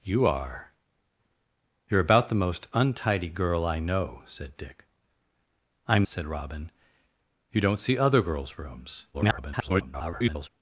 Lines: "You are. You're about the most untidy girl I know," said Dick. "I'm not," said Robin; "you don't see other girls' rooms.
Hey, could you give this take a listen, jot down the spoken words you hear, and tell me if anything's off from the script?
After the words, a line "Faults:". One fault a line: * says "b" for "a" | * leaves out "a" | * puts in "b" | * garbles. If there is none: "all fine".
"You are. You're about the most untidy girl I know," said Dick. "I'm," said Robin; "you don't see other girls' rooms. [garbled]
Faults:
* leaves out "not"
* garbles